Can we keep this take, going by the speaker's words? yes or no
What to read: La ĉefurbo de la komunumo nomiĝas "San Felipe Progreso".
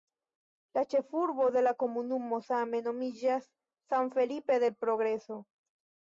no